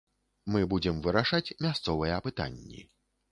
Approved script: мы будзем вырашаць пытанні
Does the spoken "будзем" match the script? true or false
true